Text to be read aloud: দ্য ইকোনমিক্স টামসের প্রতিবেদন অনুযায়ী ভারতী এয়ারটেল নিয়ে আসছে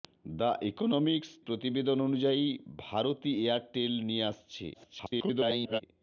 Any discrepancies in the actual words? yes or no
yes